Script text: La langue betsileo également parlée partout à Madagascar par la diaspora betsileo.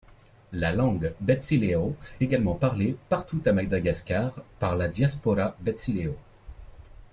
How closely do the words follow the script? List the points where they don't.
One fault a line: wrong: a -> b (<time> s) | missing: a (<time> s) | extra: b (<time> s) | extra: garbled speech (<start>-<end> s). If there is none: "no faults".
no faults